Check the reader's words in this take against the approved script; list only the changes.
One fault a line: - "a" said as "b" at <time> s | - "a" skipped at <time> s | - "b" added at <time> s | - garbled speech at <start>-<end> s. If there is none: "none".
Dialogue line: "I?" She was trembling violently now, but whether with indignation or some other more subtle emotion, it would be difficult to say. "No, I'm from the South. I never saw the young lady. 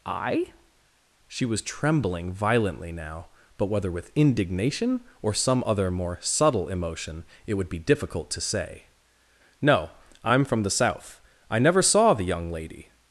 none